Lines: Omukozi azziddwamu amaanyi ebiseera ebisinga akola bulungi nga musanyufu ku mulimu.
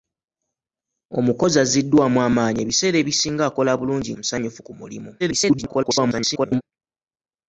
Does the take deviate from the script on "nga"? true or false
true